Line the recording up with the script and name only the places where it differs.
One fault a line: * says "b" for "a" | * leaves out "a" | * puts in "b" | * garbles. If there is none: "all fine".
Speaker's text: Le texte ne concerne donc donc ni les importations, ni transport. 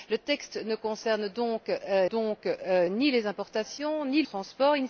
all fine